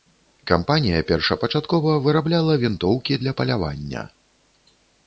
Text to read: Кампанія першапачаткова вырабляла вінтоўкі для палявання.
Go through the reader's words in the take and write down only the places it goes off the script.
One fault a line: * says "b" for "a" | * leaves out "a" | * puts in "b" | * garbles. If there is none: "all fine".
all fine